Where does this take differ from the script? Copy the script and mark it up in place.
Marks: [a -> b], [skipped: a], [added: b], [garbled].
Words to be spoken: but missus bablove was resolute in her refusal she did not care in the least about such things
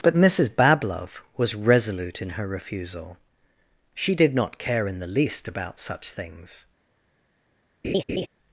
but missus bablove was resolute in her refusal she did not care in the least about such things